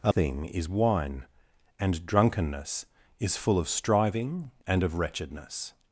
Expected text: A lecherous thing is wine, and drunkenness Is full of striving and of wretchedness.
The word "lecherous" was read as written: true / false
false